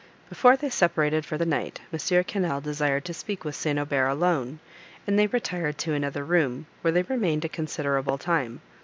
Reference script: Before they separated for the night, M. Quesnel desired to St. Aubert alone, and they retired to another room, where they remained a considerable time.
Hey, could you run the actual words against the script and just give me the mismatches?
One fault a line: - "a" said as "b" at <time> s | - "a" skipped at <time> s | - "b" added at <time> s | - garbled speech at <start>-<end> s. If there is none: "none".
- "speak with" added at 3.1 s